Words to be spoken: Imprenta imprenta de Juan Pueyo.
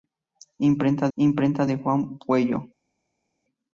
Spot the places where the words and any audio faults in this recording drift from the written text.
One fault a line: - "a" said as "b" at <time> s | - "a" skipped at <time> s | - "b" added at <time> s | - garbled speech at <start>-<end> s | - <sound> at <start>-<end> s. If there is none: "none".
none